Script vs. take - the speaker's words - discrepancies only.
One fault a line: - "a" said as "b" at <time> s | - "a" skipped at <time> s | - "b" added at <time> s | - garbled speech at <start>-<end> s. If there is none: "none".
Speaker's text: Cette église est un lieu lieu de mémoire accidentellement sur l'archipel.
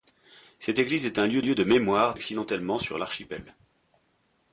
none